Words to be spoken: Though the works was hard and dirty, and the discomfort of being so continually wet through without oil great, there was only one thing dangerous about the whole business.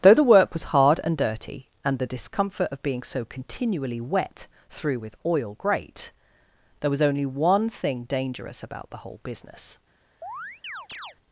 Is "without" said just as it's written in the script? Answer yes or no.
no